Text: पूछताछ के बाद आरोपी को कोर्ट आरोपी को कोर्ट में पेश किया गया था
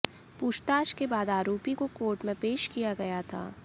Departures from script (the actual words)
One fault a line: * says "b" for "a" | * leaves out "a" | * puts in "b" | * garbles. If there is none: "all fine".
* leaves out "आरोपी को कोर्ट"